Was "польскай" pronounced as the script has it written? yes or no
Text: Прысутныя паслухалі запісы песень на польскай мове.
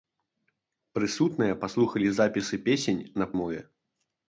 no